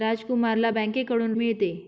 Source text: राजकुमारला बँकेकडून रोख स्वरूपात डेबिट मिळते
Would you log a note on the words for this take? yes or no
yes